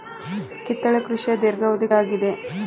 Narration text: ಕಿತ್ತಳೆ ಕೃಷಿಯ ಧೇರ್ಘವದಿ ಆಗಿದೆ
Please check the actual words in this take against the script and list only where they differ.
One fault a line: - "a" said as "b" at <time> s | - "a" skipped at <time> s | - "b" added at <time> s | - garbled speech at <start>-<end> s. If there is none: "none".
none